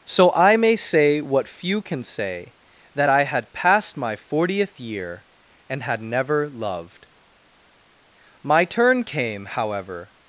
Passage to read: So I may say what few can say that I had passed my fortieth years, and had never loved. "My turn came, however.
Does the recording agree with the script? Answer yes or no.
no